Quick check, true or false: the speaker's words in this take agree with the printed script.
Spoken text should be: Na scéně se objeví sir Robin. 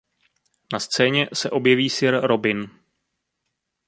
true